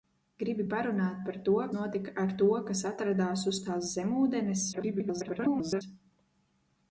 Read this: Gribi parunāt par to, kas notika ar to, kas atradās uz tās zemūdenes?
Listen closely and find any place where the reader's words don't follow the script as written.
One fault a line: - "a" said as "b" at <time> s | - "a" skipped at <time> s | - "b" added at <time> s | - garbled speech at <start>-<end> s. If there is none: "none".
- "kas" skipped at 1.6 s
- garbled speech at 4.7-5.8 s